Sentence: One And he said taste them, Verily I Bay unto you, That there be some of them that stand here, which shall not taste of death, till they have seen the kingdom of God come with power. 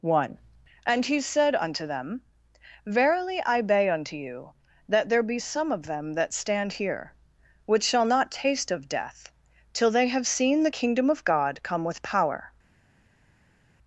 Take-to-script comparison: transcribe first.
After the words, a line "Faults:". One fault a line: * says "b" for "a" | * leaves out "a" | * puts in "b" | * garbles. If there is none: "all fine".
One And he said unto them, Verily I Bay unto you, That there be some of them that stand here, which shall not taste of death, till they have seen the kingdom of God come with power.
Faults:
* says "unto" for "taste"